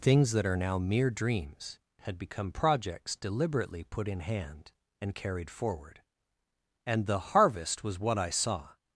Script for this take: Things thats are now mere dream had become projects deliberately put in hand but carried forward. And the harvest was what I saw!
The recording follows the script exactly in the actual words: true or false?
false